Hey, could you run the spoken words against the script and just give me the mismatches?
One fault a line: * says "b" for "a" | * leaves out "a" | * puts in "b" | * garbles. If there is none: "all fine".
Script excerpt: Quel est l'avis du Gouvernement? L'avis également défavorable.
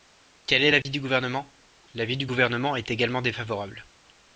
* puts in "du Gouvernement est"